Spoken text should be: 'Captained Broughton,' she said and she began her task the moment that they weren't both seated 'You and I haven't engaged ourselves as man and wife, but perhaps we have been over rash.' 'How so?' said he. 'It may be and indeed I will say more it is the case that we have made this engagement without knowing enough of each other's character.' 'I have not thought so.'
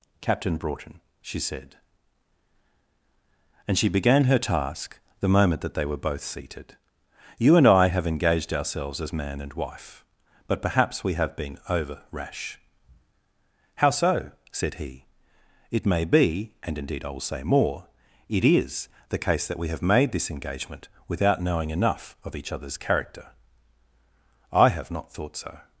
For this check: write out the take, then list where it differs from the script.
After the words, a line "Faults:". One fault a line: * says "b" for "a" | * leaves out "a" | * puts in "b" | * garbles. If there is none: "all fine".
'Captain Broughton,' she said and she began her task the moment that they were both seated 'You and I have engaged ourselves as man and wife, but perhaps we have been over rash.' 'How so?' said he. 'It may be and indeed I will say more it is the case that we have made this engagement without knowing enough of each other's character.' 'I have not thought so.'
Faults:
* says "Captain" for "Captained"
* says "were" for "weren't"
* says "have" for "haven't"